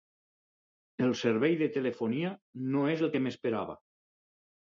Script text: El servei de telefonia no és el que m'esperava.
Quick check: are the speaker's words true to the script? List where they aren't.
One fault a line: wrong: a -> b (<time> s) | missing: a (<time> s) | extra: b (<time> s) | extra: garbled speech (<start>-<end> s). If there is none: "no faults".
no faults